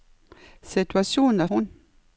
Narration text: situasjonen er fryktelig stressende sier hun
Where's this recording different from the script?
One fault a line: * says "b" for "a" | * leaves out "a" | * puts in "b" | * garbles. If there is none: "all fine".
* leaves out "fryktelig stressende sier"